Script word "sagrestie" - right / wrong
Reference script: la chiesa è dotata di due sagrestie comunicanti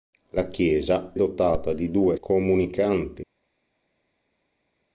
wrong